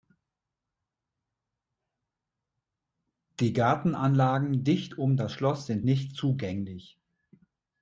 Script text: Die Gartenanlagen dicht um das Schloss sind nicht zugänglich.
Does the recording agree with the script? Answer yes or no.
yes